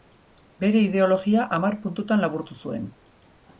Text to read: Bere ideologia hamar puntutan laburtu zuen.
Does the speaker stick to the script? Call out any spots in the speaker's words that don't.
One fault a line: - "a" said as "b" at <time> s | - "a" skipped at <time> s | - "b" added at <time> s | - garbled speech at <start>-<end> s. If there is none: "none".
none